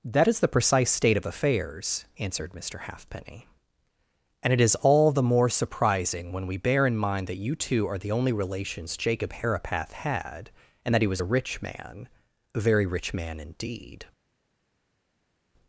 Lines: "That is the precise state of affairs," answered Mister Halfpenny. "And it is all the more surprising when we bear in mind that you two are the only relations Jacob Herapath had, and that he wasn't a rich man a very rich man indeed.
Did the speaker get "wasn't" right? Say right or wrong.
wrong